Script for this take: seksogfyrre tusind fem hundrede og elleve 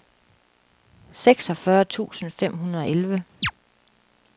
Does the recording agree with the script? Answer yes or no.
yes